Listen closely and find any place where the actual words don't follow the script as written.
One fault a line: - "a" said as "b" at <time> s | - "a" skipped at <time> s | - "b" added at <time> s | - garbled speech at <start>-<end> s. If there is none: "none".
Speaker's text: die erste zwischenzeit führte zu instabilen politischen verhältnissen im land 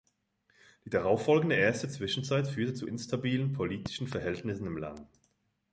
- "darauffolgende" added at 0.9 s